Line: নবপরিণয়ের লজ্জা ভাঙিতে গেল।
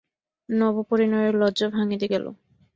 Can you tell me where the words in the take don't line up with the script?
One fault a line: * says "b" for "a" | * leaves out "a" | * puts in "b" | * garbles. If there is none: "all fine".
all fine